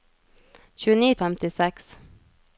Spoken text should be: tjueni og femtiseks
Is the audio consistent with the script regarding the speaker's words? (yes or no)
yes